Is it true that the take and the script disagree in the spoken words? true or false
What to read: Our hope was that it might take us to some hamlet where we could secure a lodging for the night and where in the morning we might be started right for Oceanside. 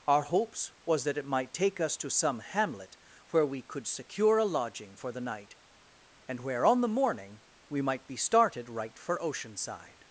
true